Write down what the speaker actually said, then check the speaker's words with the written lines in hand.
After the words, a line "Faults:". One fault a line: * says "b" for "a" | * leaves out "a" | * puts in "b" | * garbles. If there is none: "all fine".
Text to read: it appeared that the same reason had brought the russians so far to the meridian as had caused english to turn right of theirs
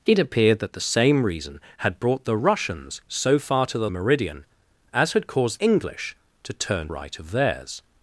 it appeared that the same reason had brought the russians so far to the meridian as had caused english to turn right of theirs
Faults:
all fine